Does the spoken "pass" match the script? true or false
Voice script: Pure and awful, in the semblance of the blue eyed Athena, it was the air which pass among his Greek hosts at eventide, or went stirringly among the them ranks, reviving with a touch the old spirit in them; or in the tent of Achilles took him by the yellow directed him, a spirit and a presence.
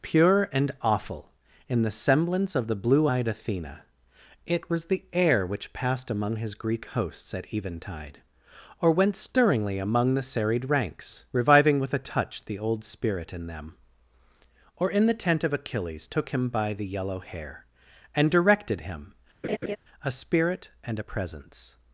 false